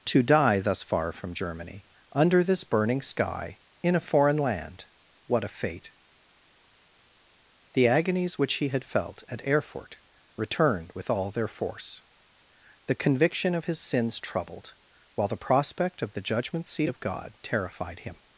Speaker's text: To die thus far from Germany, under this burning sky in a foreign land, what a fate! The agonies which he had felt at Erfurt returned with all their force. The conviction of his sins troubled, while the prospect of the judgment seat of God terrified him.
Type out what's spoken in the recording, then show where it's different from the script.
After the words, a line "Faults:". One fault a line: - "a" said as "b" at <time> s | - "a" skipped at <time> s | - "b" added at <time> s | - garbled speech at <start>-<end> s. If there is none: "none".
To die thus far from Germany, under this burning sky in a foreign land, what a fate! The agonies which he had felt at Erfurt returned with all their force. The conviction of his sins troubled, while the prospect of the judgment seat of God terrified him.
Faults:
none